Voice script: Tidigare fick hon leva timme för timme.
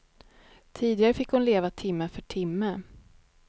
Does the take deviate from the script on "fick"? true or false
false